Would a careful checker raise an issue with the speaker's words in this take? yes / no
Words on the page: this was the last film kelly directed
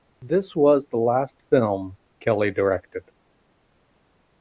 no